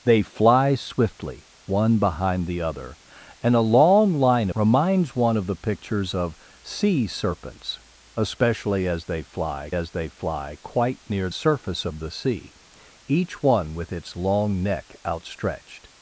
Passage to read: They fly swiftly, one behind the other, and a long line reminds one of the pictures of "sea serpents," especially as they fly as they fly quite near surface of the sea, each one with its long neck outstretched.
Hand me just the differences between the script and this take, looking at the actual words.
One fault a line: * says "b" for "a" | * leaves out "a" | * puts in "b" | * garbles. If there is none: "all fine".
all fine